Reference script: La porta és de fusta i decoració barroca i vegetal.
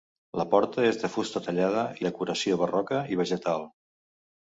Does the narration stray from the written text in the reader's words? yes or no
yes